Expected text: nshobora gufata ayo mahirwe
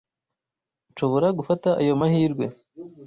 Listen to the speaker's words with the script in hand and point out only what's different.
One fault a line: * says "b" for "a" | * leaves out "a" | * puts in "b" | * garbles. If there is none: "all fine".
all fine